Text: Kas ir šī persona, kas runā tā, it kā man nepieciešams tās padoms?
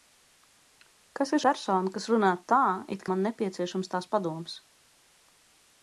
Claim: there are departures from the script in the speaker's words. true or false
true